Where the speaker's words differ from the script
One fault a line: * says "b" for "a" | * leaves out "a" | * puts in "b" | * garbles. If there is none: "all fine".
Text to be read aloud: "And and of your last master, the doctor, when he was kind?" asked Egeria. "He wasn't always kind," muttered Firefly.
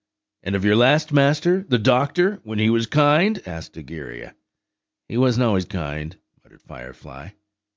* leaves out "and"